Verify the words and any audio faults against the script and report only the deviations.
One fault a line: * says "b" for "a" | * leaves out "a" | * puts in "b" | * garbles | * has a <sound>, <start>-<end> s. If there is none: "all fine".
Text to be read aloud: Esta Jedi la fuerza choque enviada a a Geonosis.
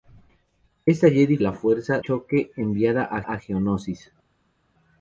all fine